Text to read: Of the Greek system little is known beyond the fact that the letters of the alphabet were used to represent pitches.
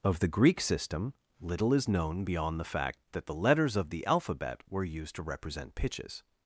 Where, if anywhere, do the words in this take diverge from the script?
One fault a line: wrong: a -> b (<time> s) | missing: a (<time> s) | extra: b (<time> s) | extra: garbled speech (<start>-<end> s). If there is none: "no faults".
no faults